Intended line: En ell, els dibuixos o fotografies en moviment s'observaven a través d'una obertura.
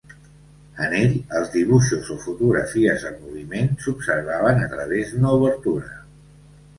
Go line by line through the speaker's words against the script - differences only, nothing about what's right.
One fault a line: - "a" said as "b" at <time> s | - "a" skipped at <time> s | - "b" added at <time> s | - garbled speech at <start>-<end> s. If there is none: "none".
none